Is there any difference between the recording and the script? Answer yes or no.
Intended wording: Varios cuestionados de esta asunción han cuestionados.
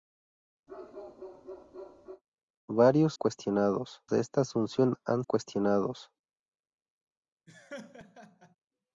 no